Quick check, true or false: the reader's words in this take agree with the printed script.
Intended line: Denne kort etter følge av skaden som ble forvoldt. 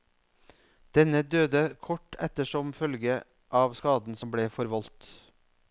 false